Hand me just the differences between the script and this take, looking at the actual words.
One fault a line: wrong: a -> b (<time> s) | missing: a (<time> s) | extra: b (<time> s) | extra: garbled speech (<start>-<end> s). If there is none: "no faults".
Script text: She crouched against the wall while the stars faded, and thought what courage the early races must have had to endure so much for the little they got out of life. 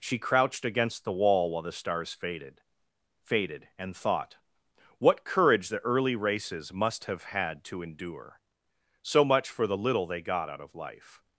extra: faded (3.2 s)